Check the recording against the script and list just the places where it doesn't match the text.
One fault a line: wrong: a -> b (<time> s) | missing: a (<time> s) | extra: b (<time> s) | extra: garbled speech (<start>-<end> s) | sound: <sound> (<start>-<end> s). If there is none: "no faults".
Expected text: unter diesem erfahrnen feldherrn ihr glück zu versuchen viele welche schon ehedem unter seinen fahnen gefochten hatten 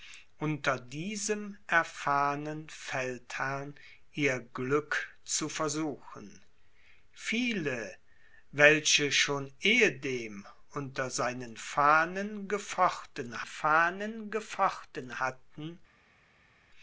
extra: fahnen gefochten (13.5 s)